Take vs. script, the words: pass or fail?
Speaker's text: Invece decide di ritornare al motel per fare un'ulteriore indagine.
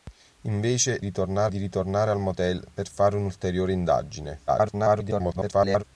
fail